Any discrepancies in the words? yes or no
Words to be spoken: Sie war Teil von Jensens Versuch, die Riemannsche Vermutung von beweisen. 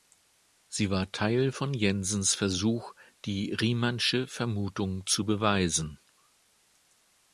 yes